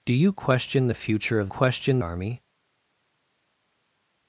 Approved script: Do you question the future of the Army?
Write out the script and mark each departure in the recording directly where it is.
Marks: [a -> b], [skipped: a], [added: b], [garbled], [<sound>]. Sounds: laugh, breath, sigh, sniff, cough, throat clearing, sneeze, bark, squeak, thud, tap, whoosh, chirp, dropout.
Do you question the future of [the -> question] Army?